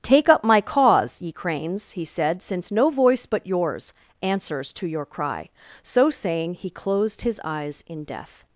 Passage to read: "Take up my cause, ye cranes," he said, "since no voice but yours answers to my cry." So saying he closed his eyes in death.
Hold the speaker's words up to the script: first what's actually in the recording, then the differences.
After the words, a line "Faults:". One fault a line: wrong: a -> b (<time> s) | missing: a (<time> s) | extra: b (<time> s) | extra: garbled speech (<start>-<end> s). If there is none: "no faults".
"Take up my cause, ye cranes," he said, "since no voice but yours answers to your cry." So saying he closed his eyes in death.
Faults:
wrong: my -> your (4.9 s)